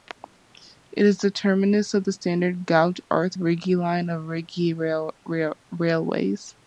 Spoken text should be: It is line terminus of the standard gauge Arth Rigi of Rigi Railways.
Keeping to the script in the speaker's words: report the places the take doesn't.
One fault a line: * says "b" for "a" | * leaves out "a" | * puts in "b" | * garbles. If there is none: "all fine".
* says "the" for "line"
* puts in "line"